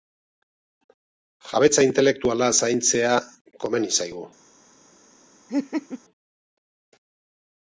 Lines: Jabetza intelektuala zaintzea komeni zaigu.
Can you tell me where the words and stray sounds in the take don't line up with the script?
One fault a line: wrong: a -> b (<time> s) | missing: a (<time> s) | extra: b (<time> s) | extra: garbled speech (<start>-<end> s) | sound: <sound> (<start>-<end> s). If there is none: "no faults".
sound: laugh (5.5-6.0 s)